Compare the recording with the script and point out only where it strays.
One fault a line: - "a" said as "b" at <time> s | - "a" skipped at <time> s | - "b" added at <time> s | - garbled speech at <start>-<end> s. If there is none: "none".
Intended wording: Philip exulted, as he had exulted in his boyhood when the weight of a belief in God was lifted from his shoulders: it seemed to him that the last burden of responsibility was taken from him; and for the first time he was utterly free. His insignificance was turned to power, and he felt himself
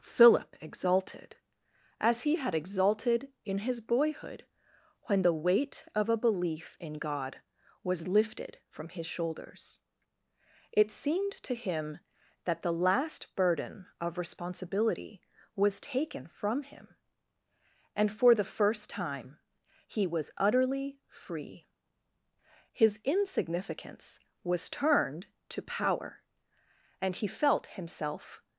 none